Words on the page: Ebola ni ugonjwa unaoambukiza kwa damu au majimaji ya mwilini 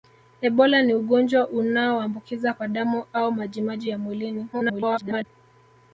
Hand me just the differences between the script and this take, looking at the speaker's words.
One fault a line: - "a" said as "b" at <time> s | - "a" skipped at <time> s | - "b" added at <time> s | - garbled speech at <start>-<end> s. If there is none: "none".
- garbled speech at 4.5-5.2 s